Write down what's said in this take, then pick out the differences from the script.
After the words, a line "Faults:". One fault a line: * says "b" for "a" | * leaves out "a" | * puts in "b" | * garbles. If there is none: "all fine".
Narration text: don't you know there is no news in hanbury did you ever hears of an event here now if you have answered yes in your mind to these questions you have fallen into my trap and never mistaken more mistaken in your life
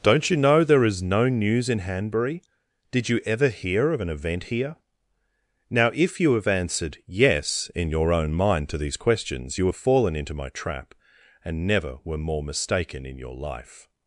don't you know there is no news in hanbury did you ever hear of an event here now if you have answered yes in your own mind to these questions you have fallen into my trap and never were more mistaken in your life
Faults:
* says "hear" for "hears"
* puts in "own"
* says "were" for "mistaken"